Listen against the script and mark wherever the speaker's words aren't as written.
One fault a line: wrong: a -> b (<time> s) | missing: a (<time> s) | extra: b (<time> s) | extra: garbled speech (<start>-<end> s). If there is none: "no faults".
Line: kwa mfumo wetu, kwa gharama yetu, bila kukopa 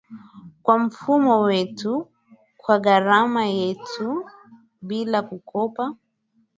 no faults